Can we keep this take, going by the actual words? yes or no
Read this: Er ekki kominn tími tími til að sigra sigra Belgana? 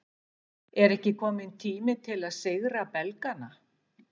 no